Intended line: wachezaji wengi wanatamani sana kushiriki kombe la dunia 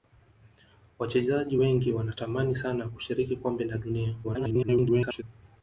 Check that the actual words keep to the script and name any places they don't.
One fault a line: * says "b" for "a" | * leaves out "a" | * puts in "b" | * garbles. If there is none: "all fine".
* garbles